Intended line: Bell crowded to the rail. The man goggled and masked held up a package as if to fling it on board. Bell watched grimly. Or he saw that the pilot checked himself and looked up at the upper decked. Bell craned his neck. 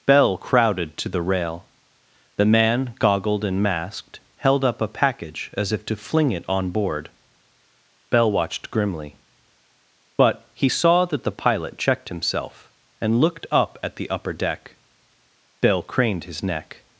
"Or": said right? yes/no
no